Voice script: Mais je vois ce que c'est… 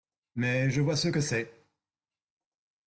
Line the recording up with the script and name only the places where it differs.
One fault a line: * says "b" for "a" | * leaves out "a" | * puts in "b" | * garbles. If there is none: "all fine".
all fine